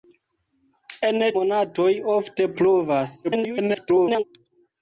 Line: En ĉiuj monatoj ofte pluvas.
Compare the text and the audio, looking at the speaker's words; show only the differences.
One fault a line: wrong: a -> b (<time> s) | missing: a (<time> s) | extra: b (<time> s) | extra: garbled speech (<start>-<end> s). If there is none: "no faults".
missing: ĉiuj (1.2 s)
extra: garbled speech (3.2-4.2 s)